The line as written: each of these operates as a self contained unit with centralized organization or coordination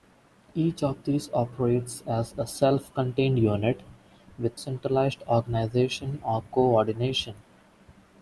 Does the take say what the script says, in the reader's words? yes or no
yes